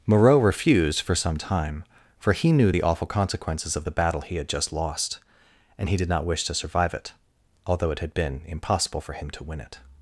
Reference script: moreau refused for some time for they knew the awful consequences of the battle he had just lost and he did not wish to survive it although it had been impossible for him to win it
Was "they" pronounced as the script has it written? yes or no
no